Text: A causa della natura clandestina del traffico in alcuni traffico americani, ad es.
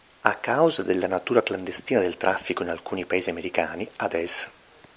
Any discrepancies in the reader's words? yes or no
yes